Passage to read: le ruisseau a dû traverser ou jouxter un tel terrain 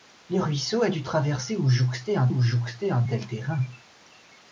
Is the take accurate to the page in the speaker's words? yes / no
no